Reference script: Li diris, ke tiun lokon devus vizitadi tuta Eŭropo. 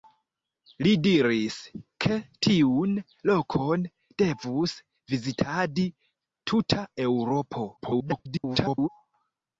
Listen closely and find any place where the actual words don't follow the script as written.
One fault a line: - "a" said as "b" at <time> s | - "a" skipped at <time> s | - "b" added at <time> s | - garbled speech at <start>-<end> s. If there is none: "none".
- garbled speech at 7.8-8.9 s